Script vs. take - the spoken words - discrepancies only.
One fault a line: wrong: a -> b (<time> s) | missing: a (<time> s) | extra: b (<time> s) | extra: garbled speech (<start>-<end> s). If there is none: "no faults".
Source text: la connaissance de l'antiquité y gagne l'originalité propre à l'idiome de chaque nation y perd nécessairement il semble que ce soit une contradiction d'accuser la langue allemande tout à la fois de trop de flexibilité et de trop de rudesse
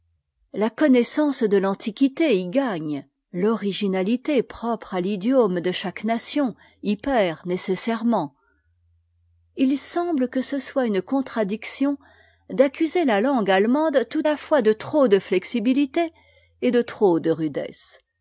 missing: à (14.2 s)